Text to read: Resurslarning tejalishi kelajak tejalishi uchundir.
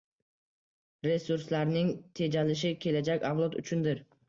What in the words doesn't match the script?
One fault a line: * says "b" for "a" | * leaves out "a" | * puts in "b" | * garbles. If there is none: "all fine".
* says "avlod" for "tejalishi"